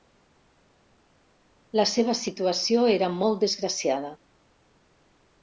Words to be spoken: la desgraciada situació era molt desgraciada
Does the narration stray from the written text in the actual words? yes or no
yes